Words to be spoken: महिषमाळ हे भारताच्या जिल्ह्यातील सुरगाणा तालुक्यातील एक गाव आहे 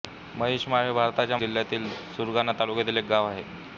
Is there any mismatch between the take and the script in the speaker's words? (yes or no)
no